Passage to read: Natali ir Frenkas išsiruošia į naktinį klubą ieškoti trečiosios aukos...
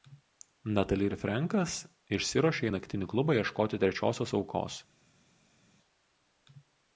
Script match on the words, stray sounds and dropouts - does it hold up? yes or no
yes